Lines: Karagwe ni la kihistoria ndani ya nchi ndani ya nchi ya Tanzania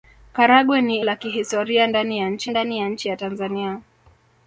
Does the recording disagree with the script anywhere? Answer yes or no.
no